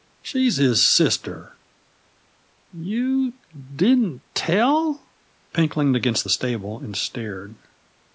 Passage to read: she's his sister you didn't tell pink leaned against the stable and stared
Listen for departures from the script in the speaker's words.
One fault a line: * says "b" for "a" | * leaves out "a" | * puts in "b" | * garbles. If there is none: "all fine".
all fine